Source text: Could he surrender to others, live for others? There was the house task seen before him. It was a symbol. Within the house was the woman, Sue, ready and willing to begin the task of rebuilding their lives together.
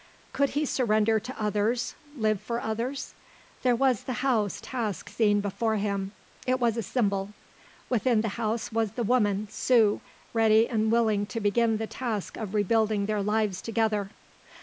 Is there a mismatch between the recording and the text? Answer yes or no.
no